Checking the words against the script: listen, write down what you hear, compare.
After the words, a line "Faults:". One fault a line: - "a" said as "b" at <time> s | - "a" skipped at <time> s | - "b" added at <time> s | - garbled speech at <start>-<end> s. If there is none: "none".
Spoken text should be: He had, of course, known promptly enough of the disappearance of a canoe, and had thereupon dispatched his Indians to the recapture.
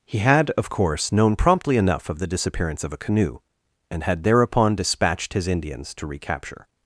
He had, of course, known promptly enough of the disappearance of a canoe, and had thereupon dispatched his Indians to recapture.
Faults:
- "the" skipped at 6.1 s